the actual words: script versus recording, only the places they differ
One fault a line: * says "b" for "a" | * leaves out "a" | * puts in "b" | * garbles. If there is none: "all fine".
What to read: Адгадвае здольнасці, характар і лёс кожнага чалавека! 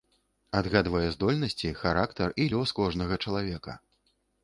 all fine